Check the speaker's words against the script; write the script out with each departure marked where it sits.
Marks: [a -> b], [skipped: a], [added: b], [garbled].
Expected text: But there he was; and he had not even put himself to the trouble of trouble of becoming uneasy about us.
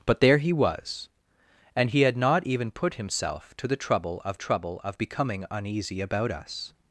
But there he was; and he had not even put himself to the trouble of trouble of becoming uneasy about us.